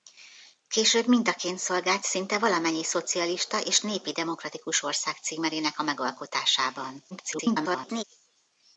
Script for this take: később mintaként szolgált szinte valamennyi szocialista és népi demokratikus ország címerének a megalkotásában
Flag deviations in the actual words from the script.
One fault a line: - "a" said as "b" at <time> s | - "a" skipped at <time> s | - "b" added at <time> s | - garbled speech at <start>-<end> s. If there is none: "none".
- garbled speech at 7.1-8.0 s